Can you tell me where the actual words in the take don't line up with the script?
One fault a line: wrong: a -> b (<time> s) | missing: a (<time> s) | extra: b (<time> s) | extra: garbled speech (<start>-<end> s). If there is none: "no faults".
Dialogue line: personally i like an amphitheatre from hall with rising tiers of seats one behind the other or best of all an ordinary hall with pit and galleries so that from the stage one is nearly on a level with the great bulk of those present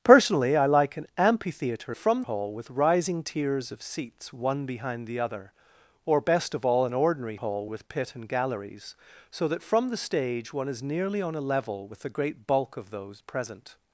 no faults